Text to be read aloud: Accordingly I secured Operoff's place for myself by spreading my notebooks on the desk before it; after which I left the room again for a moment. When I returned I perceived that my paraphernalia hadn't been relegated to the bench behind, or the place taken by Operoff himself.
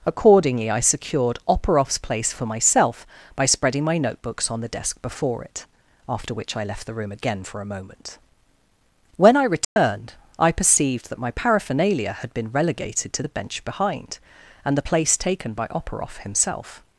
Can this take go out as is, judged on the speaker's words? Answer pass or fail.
fail